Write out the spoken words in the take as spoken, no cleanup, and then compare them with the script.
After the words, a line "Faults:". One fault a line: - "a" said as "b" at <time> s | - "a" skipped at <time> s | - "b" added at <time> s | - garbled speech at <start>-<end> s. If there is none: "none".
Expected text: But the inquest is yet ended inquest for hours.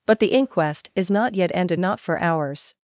But the inquest is not yet ended not for hours.
Faults:
- "not" added at 1.1 s
- "inquest" said as "not" at 1.8 s